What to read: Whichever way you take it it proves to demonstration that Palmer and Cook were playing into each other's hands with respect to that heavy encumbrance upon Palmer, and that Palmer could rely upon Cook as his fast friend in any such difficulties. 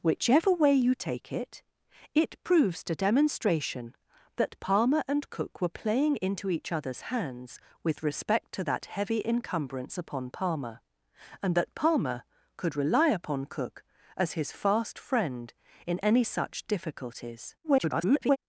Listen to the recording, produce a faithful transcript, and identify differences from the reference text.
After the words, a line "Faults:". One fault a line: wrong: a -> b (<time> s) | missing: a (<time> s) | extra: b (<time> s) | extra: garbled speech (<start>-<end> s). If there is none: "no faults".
Whichever way you take it it proves to demonstration that Palmer and Cook were playing into each other's hands with respect to that heavy encumbrance upon Palmer, and that Palmer could rely upon Cook as his fast friend in any such difficulties. [garbled]
Faults:
extra: garbled speech (17.6-18.4 s)